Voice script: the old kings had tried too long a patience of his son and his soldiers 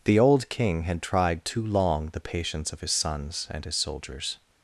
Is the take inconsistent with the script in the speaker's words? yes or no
yes